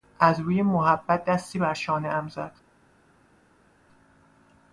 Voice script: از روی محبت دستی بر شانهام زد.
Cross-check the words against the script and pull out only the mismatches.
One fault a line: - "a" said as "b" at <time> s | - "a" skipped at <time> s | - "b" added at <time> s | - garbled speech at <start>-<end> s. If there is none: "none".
none